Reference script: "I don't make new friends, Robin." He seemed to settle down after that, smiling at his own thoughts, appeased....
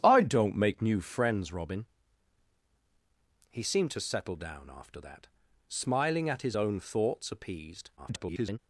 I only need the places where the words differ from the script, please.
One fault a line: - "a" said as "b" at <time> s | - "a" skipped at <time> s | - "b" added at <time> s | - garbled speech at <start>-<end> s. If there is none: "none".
- garbled speech at 8.0-8.6 s